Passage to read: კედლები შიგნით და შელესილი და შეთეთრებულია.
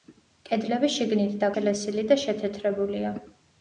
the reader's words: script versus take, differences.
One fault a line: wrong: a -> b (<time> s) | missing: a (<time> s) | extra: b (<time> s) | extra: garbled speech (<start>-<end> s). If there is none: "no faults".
no faults